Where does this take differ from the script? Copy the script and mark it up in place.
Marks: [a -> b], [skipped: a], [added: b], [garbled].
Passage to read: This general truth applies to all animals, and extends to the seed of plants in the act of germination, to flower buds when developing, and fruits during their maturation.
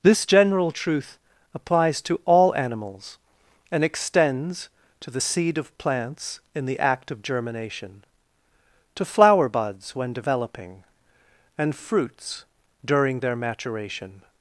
This general truth applies to all animals, and extends to the seed of plants in the act of germination, to flower buds when developing, and fruits during their maturation.